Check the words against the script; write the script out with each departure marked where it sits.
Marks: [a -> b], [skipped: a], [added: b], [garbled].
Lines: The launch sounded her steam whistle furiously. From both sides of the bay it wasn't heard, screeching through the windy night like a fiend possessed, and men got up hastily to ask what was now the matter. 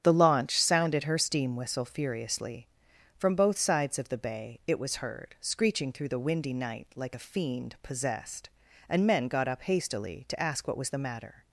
The launch sounded her steam whistle furiously. From both sides of the bay it [wasn't -> was] heard, screeching through the windy night like a fiend possessed, and men got up hastily to ask what was [skipped: now] the matter.